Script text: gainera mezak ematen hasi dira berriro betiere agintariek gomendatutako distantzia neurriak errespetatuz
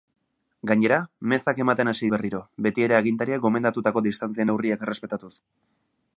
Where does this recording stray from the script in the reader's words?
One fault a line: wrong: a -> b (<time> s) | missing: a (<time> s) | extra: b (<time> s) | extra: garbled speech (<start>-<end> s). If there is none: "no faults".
missing: dira (2.1 s)